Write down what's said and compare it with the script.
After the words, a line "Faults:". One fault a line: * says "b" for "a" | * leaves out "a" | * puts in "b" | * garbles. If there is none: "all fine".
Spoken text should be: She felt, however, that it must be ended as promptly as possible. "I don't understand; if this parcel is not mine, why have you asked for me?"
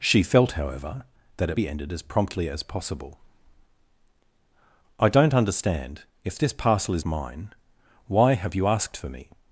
She felt, however, that it be ended as promptly as possible. "I don't understand; if this parcel is mine, why have you asked for me?"
Faults:
* leaves out "must"
* leaves out "not"